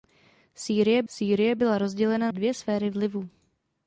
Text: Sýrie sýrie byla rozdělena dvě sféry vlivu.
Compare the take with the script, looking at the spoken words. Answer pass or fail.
pass